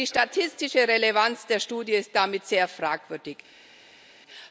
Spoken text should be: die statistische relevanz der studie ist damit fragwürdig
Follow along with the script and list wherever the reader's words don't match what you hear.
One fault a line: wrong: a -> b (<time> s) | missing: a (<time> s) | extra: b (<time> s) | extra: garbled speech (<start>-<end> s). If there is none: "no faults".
extra: sehr (2.5 s)